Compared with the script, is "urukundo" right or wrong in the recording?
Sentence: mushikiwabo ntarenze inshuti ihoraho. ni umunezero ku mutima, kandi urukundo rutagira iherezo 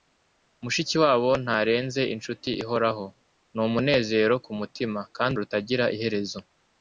wrong